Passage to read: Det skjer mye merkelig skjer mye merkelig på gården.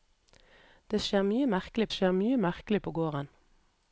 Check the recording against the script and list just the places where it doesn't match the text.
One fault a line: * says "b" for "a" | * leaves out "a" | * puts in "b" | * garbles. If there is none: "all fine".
all fine